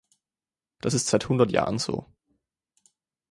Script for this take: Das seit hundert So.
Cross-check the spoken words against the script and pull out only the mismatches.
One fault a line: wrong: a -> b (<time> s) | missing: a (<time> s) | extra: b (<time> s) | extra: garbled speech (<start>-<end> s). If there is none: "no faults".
extra: ist (0.9 s)
extra: Jahren (1.5 s)